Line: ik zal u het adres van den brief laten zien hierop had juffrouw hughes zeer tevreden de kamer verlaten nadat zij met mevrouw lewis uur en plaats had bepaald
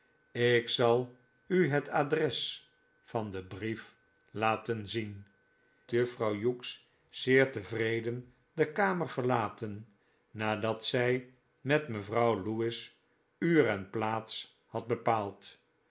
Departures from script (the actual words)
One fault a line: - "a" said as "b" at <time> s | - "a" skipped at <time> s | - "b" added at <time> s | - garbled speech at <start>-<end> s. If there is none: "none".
- "hierop had" skipped at 5.2 s